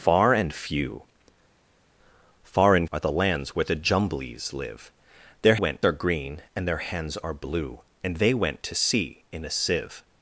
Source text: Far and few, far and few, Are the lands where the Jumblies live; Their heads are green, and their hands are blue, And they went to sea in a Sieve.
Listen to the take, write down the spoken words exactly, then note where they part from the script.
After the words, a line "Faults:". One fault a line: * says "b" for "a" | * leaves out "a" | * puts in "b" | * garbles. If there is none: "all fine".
Far and few, far and Are the lands where the Jumblies live; Their went are green, and their hands are blue, And they went to sea in a Sieve.
Faults:
* leaves out "few"
* says "went" for "heads"